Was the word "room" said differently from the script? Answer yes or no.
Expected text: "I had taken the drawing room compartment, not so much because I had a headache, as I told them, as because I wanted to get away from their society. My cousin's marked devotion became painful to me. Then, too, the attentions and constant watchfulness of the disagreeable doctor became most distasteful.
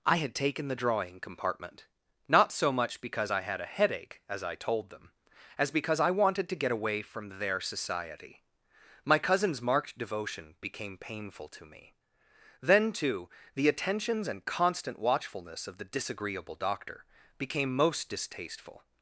yes